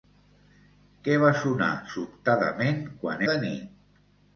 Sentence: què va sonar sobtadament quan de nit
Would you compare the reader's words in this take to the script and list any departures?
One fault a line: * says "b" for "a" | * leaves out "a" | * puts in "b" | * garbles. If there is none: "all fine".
all fine